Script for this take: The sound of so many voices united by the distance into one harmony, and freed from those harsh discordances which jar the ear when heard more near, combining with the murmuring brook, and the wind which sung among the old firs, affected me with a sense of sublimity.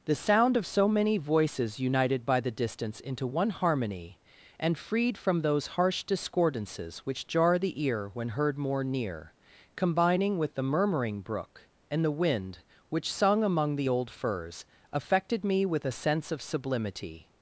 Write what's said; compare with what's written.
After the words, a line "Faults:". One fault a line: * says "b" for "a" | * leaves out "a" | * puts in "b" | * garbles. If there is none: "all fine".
The sound of so many voices united by the distance into one harmony, and freed from those harsh discordances which jar the ear when heard more near, combining with the murmuring brook, and the wind which sung among the old firs, affected me with a sense of sublimity.
Faults:
all fine